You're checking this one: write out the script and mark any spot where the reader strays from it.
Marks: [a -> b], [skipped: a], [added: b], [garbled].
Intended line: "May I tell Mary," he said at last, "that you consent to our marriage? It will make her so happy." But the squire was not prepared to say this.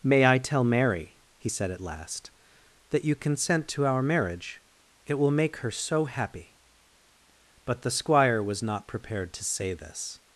"May I tell Mary," he said at last, "that you consent to our marriage? It will make her so happy." But the squire was not prepared to say this.